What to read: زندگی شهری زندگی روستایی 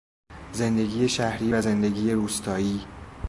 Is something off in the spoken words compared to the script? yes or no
yes